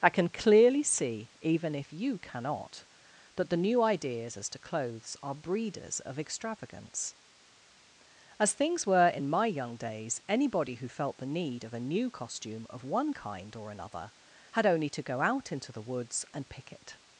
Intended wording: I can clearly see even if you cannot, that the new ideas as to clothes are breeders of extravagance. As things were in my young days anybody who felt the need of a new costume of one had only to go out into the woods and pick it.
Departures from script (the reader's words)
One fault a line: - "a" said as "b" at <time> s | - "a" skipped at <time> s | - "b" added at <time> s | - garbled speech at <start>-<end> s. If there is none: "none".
- "kind or another" added at 13.1 s